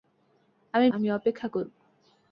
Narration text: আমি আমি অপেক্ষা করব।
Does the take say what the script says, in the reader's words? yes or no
yes